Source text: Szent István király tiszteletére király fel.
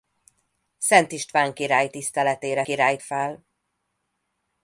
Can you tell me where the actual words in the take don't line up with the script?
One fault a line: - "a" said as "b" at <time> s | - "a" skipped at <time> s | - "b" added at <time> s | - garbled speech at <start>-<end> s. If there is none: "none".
none